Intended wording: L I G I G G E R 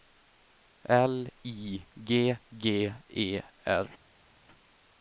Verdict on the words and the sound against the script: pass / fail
fail